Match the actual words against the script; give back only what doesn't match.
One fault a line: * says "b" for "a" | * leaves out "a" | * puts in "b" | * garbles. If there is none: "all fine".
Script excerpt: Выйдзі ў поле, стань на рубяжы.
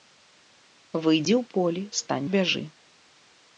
* leaves out "на"